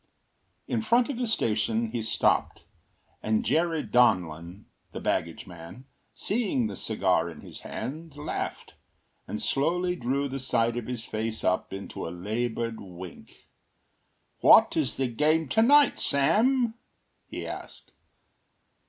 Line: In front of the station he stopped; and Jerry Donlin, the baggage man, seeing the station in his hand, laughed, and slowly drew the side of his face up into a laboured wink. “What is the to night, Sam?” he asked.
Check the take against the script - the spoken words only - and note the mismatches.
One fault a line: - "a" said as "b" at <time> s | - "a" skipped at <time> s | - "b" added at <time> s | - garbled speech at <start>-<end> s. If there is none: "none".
- "station" said as "cigar" at 6.8 s
- "game" added at 15.1 s